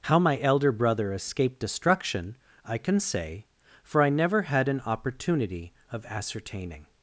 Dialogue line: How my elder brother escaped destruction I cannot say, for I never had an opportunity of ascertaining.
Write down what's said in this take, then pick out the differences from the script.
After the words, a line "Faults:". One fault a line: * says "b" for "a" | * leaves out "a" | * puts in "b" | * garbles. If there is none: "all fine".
How my elder brother escaped destruction I can say, for I never had an opportunity of ascertaining.
Faults:
* says "can" for "cannot"